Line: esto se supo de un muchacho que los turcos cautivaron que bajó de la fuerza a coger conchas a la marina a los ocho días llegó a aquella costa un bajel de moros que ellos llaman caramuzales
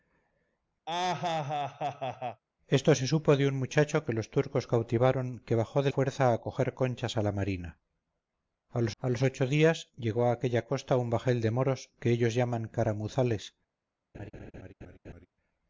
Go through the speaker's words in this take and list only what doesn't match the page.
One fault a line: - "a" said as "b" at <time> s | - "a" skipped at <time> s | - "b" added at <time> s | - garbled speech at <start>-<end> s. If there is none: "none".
- "la" skipped at 5.9 s
- "a los" added at 9.0 s